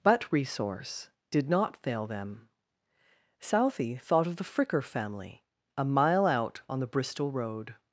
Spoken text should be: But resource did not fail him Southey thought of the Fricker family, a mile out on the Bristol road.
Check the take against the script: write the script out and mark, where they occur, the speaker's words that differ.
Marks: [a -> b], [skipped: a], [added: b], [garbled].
But resource did not fail [him -> them] Southey thought of the Fricker family, a mile out on the Bristol road.